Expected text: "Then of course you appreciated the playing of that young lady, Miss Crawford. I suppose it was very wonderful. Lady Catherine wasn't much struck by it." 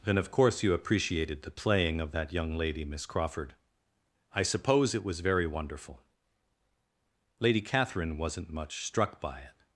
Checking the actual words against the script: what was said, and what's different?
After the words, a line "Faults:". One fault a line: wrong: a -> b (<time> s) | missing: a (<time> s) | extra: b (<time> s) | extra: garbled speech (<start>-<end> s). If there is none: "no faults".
"Then of course you appreciated the playing of that young lady, Miss Crawford. I suppose it was very wonderful. Lady Catherine wasn't much struck by it."
Faults:
no faults